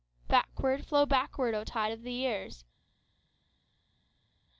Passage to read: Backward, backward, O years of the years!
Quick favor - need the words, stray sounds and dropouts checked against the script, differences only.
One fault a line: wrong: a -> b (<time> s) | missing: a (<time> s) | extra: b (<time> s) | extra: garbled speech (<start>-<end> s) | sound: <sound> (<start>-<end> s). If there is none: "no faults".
extra: flow (0.8 s)
wrong: years -> tide (1.6 s)